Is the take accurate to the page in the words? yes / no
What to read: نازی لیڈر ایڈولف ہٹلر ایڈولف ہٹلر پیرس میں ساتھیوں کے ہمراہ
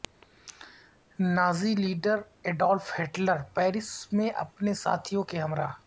no